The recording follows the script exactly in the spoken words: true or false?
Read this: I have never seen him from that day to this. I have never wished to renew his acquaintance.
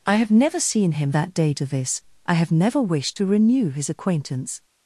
false